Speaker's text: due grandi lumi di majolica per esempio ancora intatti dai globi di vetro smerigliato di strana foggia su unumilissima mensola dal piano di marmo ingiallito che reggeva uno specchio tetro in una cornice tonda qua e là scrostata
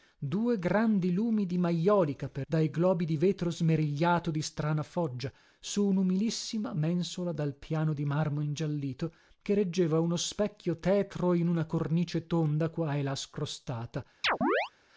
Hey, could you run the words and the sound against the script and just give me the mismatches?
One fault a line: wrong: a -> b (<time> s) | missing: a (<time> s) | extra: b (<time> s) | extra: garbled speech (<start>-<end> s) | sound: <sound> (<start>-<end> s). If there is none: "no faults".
missing: esempio ancora intatti (2.5 s)
sound: chirp (14.2-14.7 s)